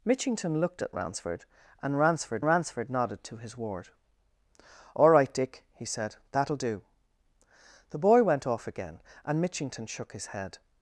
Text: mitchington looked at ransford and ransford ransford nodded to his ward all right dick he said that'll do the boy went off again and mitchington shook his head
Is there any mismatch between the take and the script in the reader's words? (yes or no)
no